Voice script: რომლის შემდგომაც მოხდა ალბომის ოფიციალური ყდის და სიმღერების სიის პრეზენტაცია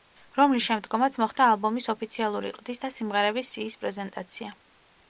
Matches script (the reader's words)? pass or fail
pass